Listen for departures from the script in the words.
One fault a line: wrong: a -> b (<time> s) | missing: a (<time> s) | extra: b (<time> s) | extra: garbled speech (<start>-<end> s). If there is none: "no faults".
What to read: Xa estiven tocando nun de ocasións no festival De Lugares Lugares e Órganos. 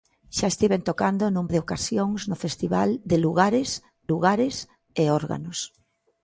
no faults